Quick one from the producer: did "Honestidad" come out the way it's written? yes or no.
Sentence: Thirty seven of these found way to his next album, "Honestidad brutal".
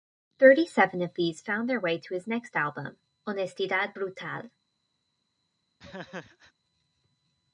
yes